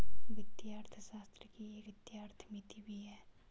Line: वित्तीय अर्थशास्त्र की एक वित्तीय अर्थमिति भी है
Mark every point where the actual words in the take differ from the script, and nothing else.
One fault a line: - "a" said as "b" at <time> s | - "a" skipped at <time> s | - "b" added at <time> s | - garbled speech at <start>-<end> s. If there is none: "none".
none